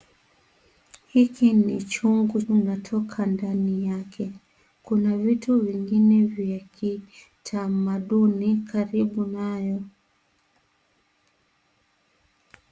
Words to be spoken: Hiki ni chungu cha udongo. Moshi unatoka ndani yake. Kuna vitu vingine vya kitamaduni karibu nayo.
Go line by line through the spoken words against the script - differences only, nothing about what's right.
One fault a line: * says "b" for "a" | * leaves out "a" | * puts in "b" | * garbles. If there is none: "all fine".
* leaves out "cha udongo Moshi"